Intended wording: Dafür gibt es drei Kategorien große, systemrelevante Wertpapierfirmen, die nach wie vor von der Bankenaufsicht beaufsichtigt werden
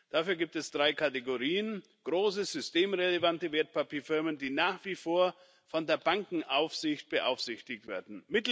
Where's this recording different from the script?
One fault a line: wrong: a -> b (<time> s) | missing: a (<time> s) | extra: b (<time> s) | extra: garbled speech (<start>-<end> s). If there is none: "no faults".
no faults